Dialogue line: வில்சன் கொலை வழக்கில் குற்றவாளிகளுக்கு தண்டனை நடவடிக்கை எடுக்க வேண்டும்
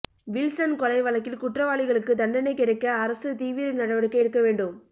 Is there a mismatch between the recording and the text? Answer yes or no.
yes